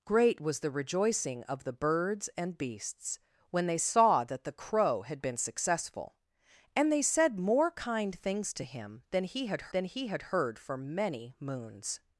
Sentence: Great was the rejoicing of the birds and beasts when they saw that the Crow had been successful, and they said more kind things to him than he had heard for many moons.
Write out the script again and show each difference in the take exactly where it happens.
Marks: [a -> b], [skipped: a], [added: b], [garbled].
Great was the rejoicing of the birds and beasts when they saw that the Crow had been successful, and they said more kind things to him than he had [added: than he had] heard for many moons.